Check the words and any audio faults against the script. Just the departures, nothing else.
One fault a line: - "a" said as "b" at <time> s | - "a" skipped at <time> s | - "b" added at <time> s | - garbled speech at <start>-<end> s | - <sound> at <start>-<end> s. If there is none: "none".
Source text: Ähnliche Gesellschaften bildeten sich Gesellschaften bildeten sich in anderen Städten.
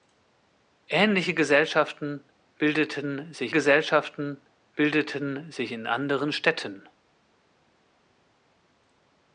none